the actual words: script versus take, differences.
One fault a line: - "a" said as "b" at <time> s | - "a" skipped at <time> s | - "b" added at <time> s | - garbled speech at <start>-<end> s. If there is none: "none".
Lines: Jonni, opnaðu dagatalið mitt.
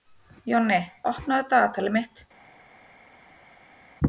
none